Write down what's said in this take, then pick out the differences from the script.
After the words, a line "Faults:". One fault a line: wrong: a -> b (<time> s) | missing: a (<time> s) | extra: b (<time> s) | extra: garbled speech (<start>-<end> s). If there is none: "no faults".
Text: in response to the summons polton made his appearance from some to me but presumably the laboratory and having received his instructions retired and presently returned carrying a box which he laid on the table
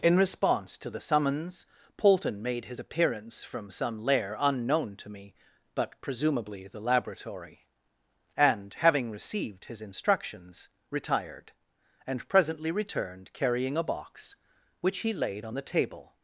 in response to the summons polton made his appearance from some lair unknown to me but presumably the laboratory and having received his instructions retired and presently returned carrying a box which he laid on the table
Faults:
extra: lair unknown (4.0 s)